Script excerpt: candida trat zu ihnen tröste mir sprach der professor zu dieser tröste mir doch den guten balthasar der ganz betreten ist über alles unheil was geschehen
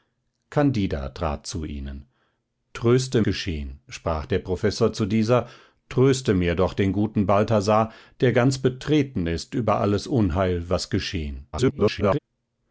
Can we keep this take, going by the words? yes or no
no